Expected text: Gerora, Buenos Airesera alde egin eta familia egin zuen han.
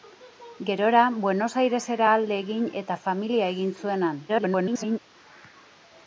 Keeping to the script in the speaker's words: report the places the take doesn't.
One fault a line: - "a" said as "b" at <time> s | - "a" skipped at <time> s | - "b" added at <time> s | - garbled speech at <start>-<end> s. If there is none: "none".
- garbled speech at 4.3-5.0 s